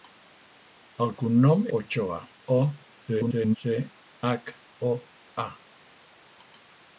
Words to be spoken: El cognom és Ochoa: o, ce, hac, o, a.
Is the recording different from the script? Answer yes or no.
yes